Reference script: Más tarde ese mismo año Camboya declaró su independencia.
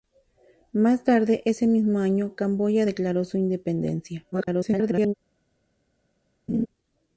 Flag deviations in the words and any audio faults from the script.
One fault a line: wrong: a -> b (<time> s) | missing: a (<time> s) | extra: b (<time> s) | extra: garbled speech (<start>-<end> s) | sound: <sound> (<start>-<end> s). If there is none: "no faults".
extra: garbled speech (4.3-5.1 s)
sound: laugh (6.5-6.7 s)